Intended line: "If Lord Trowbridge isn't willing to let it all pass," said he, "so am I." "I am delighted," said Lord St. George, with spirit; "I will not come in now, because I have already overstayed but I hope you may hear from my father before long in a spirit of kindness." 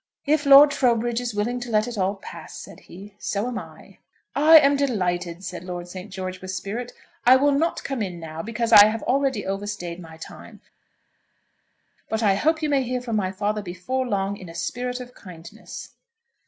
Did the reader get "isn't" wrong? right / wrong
wrong